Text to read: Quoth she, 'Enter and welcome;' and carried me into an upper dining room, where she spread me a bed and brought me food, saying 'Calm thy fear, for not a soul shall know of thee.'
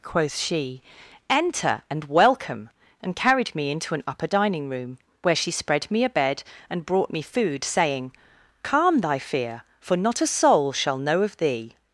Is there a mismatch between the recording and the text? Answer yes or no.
no